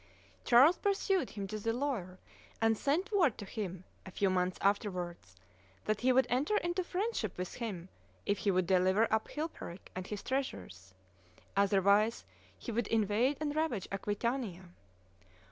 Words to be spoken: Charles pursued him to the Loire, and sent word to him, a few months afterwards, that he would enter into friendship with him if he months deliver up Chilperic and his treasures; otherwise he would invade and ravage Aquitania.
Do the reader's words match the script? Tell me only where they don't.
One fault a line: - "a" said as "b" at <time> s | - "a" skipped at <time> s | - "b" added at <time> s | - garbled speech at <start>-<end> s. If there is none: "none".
- "months" said as "would" at 8.5 s